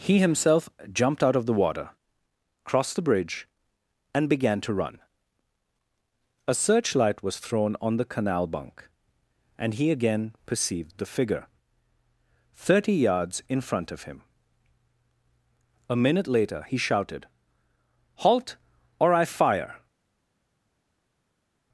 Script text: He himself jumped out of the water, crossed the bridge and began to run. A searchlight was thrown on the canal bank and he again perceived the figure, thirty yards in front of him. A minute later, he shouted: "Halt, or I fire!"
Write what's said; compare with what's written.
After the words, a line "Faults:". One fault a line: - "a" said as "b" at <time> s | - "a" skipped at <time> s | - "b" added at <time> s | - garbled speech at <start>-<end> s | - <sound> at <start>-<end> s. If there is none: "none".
He himself jumped out of the water, crossed the bridge and began to run. A searchlight was thrown on the canal bunk and he again perceived the figure, thirty yards in front of him. A minute later, he shouted: "Halt, or I fire!"
Faults:
- "bank" said as "bunk" at 8.5 s